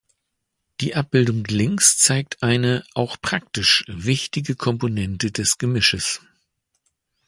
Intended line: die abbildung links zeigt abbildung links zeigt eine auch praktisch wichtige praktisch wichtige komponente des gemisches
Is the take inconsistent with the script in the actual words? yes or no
yes